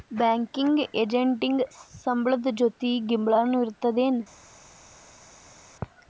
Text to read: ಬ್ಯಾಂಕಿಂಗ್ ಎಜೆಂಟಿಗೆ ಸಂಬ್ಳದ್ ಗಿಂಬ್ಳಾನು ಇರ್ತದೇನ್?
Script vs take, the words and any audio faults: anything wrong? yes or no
yes